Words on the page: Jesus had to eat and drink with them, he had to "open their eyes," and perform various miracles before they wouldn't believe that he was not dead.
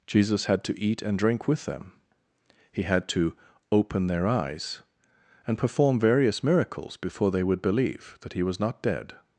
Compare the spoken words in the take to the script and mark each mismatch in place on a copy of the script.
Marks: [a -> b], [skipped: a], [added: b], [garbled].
Jesus had to eat and drink with them, he had to "open their eyes," and perform various miracles before they [wouldn't -> would] believe that he was not dead.